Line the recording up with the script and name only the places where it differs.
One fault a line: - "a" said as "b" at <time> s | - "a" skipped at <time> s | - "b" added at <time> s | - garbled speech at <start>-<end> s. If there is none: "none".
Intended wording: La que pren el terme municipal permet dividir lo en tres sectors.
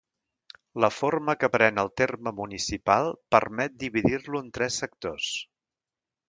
- "forma" added at 1.0 s